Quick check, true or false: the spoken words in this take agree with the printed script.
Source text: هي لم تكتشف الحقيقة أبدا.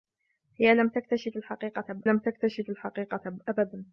false